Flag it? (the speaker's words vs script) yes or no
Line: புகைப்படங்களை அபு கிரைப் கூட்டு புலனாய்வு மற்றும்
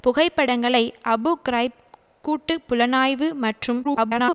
yes